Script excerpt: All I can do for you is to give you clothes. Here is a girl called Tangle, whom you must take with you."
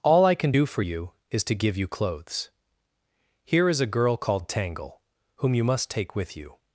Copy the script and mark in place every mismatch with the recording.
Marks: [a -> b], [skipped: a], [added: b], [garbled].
All I can do for you is to give you clothes. Here is a girl called Tangle, whom you must take with you."